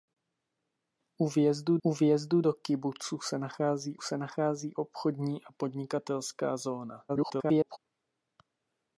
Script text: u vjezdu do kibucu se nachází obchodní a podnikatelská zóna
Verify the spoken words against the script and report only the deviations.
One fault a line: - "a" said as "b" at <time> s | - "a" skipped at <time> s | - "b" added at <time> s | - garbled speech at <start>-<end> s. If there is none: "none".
- "u vjezdu" added at 1.8 s
- "se nachází" added at 4.0 s
- garbled speech at 7.1-7.8 s